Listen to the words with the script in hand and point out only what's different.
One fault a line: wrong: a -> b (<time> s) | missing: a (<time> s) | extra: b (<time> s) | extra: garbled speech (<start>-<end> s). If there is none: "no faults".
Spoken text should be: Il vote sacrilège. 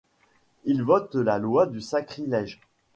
extra: la loi du (1.1 s)